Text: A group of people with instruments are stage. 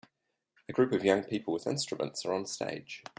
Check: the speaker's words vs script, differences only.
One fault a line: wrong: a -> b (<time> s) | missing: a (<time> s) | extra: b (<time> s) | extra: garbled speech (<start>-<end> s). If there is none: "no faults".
extra: young (1.0 s)
extra: on (2.3 s)